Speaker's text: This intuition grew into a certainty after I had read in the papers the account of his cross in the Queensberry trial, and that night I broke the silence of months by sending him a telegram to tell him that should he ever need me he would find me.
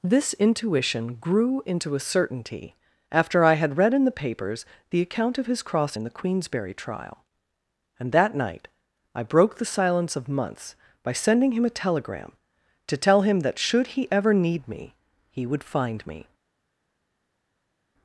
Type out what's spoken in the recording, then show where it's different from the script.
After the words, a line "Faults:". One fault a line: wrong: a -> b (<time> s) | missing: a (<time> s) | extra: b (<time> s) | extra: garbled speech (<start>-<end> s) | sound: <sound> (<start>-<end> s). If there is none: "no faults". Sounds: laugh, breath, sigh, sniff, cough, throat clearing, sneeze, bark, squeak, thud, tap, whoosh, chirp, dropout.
This intuition grew into a certainty after I had read in the papers the account of his cross in the Queensberry trial, and that night I broke the silence of months by sending him a telegram to tell him that should he ever need me he would find me.
Faults:
no faults